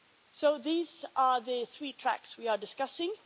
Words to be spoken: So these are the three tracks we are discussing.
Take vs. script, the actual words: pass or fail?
pass